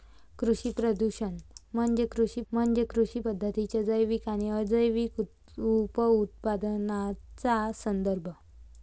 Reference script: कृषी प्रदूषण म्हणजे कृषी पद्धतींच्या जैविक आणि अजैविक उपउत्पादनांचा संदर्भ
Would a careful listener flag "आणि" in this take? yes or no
no